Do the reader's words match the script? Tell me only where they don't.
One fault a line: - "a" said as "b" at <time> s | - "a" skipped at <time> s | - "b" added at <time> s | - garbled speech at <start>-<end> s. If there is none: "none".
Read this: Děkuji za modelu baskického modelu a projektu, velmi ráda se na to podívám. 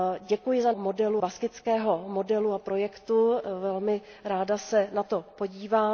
none